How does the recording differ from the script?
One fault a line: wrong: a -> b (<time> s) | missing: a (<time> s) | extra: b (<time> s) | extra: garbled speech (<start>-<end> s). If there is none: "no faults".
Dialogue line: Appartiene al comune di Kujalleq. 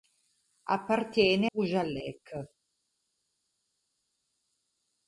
missing: al comune di (1.5 s)